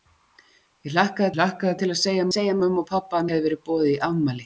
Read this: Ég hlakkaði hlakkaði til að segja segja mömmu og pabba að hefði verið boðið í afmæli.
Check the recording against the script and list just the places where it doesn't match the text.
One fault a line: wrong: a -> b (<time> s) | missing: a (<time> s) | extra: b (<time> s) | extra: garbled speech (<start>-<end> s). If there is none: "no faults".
no faults